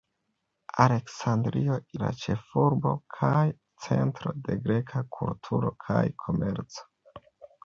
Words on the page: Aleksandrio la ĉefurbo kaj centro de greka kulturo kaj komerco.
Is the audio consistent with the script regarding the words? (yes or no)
yes